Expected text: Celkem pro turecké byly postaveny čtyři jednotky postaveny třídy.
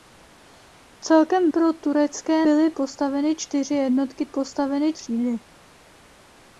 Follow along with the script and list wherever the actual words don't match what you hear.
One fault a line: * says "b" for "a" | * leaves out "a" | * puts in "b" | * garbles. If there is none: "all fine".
all fine